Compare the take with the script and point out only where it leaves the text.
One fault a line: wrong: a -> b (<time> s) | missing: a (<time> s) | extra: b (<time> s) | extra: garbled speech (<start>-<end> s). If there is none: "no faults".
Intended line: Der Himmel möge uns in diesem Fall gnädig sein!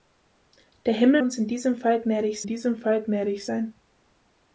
missing: möge (1.2 s)
extra: diesem Fall gnädig (2.4 s)